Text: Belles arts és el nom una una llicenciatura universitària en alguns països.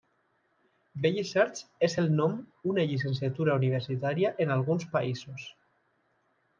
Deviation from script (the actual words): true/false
true